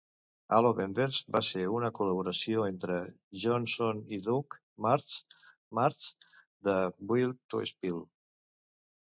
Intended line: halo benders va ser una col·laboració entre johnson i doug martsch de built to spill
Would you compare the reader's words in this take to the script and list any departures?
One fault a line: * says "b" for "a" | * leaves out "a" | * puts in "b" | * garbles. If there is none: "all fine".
* puts in "martsch"